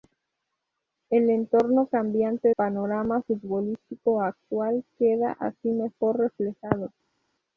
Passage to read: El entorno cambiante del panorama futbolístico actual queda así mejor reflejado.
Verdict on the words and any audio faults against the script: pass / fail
fail